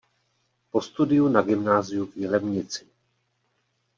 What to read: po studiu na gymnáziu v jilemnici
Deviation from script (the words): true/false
false